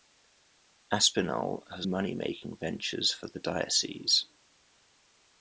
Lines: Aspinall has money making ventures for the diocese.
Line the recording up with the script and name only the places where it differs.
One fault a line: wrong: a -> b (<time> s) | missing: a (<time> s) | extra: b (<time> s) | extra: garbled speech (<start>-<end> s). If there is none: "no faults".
no faults